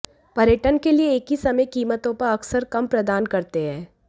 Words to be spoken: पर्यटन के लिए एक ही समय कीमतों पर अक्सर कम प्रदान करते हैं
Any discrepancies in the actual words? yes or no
no